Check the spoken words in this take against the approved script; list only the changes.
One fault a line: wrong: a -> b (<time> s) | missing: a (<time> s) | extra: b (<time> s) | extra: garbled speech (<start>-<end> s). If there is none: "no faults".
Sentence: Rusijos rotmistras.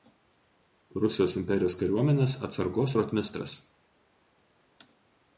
extra: imperijos kariuomenės atsargos (1.4 s)